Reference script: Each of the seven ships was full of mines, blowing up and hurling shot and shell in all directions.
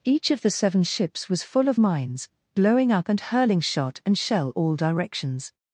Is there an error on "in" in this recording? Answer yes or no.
yes